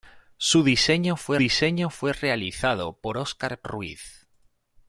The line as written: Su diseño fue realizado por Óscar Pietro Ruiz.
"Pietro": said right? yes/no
no